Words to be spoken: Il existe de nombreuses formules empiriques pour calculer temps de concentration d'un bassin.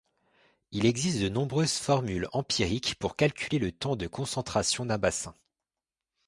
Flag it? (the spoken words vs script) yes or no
yes